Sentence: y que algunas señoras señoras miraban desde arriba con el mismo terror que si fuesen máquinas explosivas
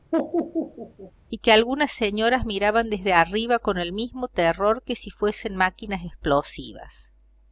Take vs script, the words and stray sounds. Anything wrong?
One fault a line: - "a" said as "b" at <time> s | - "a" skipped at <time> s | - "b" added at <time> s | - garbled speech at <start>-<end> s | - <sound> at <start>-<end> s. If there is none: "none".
- laugh at 0.1-1.1 s
- "señoras" skipped at 2.4 s